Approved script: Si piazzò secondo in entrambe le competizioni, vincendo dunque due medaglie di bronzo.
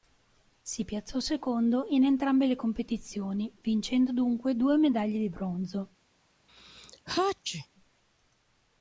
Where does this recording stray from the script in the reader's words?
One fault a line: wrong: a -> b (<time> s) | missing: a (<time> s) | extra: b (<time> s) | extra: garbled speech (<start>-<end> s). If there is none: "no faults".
no faults